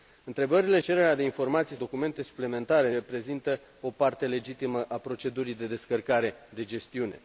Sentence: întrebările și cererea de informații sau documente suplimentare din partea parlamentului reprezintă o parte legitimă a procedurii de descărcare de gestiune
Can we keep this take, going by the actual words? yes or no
no